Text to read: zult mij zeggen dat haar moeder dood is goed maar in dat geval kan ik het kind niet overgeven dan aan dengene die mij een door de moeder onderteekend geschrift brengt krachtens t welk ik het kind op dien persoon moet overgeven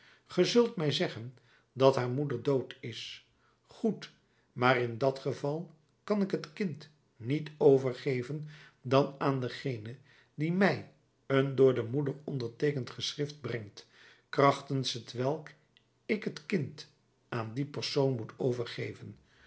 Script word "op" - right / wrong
wrong